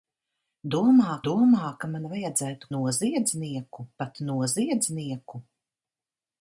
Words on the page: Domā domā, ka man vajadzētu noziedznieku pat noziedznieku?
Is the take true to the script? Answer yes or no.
yes